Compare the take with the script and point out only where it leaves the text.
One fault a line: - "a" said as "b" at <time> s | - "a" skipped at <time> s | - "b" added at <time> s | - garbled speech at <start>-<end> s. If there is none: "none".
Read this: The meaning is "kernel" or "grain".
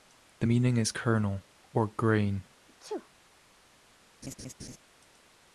none